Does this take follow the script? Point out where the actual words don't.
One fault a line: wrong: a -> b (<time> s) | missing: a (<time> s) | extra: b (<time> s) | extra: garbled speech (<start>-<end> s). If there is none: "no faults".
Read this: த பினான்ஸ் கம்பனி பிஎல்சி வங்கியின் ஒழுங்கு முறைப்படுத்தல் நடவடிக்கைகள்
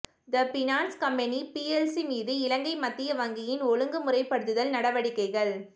extra: மீது இலங்கை மத்திய (2.1 s)